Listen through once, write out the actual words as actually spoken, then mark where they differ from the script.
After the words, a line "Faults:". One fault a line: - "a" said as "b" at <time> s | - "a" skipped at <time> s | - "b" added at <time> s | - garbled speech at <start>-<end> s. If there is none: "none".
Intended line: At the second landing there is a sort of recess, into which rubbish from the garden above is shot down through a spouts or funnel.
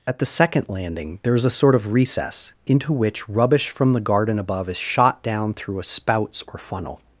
At the second landing there is a sort of recess, into which rubbish from the garden above is shot down through a spouts or funnel.
Faults:
none